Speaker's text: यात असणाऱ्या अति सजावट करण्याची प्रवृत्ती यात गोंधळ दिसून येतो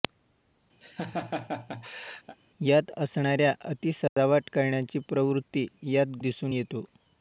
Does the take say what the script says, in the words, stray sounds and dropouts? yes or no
no